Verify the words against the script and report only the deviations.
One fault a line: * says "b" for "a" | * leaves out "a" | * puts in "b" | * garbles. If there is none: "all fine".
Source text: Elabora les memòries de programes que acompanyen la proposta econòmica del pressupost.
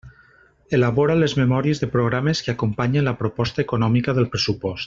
all fine